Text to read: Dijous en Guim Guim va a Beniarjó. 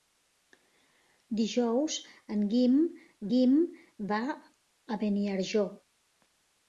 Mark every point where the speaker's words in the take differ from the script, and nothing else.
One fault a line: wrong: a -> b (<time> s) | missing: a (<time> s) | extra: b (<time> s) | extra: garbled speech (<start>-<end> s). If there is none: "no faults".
no faults